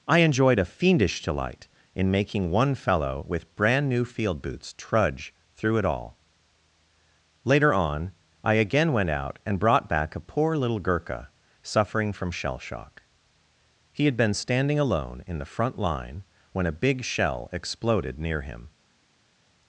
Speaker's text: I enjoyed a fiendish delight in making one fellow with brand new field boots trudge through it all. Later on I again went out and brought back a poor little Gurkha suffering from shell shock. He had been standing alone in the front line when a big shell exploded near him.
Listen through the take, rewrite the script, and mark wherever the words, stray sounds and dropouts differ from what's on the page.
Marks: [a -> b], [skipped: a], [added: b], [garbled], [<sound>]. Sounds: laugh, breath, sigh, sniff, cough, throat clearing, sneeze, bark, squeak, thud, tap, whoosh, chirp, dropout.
I enjoyed a fiendish delight in making one fellow with brand new field boots trudge through it all. Later on I again went out and brought back a poor little Gurkha suffering from shell shock. He had been standing alone in the front line when a big shell exploded near him.